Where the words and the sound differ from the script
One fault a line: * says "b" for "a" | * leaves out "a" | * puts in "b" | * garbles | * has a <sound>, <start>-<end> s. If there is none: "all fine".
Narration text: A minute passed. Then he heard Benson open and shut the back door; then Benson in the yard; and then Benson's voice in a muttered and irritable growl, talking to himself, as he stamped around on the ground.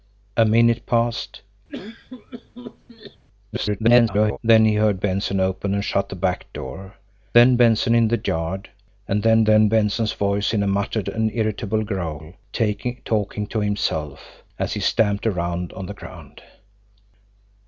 * has a cough, 1.7-3.2 s
* garbles
* puts in "then"